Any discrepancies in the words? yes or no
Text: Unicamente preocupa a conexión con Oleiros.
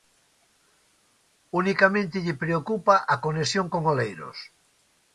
yes